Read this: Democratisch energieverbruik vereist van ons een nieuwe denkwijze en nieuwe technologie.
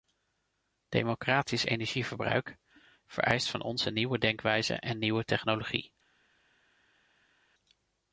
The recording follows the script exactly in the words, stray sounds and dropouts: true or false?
true